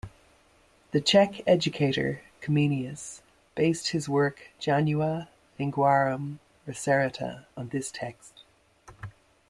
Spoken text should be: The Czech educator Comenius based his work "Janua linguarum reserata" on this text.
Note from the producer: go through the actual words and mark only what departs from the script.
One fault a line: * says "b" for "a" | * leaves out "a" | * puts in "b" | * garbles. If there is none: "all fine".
all fine